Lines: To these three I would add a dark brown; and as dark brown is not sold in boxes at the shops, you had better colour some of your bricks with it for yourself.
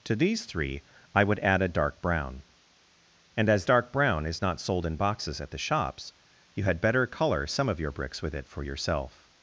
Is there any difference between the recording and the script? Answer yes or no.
no